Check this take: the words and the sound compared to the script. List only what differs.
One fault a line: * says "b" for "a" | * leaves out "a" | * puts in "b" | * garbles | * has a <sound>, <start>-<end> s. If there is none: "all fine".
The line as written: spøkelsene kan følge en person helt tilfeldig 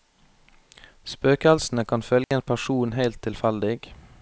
* has a dropout, 2.2-2.3 s